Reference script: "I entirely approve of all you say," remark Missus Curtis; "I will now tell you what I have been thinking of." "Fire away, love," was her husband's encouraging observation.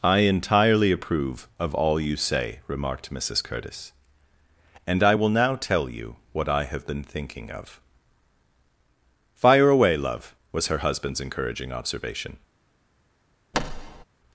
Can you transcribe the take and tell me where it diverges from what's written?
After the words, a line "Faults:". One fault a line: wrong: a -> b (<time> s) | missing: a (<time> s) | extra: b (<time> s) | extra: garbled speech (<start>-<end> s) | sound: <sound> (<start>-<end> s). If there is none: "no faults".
"I entirely approve of all you say," remarked Missus Curtis; "and I will now tell you what I have been thinking of." "Fire away, love," was her husband's encouraging observation.
Faults:
wrong: remark -> remarked (2.7 s)
extra: and (4.9 s)
sound: thud (13.5-14.0 s)